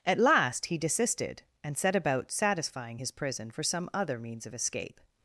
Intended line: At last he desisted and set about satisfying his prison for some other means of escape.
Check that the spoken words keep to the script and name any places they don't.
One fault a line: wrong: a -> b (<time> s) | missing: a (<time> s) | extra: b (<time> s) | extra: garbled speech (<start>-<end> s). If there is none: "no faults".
no faults